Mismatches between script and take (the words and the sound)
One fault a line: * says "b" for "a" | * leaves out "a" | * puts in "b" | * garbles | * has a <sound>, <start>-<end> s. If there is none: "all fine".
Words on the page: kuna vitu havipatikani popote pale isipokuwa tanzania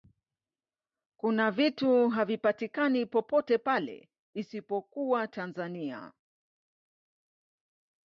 all fine